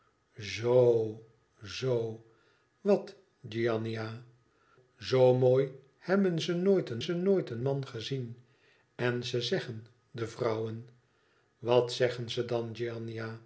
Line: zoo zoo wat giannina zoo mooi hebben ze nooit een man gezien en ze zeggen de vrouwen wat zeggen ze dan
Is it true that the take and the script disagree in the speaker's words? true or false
true